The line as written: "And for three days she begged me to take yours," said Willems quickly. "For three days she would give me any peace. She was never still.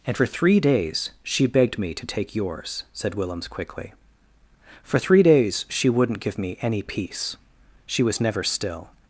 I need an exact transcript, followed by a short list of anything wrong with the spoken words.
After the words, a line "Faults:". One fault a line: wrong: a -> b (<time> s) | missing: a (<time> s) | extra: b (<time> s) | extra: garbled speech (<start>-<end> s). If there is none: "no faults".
"And for three days she begged me to take yours," said Willems quickly. "For three days she wouldn't give me any peace. She was never still.
Faults:
wrong: would -> wouldn't (5.9 s)